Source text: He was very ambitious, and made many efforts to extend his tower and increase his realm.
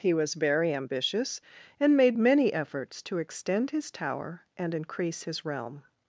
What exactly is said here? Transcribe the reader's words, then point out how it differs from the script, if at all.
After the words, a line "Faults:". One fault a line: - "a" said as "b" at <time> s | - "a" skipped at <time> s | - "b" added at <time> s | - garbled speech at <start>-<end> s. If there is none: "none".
He was very ambitious, and made many efforts to extend his tower and increase his realm.
Faults:
none